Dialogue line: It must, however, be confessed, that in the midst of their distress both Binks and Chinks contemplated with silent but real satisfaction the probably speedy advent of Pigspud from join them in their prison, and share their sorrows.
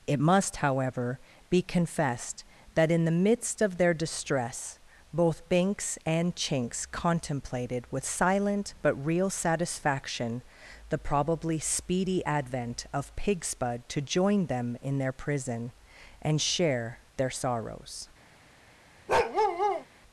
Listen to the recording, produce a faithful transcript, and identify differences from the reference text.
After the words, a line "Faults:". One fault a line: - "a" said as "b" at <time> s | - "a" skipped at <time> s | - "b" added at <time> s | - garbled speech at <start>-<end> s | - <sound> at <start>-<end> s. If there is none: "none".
It must, however, be confessed, that in the midst of their distress both Binks and Chinks contemplated with silent but real satisfaction the probably speedy advent of Pigspud to join them in their prison, and share their sorrows.
Faults:
- "from" said as "to" at 13.9 s
- bark at 19.1-19.9 s